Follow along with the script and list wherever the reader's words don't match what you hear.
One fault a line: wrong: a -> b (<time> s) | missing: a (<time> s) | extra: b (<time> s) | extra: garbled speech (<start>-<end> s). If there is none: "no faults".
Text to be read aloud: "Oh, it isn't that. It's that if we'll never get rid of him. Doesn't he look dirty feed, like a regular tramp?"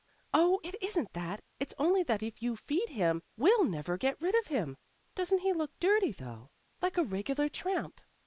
extra: only (1.8 s)
extra: you feed him (2.4 s)
wrong: feed -> though (6.1 s)